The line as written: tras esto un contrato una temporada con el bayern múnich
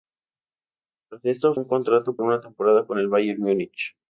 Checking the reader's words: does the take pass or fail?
pass